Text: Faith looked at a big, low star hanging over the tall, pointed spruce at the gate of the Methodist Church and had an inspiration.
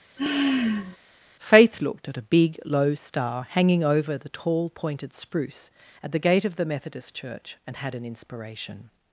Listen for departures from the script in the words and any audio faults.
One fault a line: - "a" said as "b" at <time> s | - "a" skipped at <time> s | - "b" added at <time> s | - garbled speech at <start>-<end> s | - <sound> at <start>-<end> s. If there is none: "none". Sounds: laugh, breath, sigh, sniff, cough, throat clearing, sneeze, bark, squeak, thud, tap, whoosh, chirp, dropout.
- sigh at 0.2-1.0 s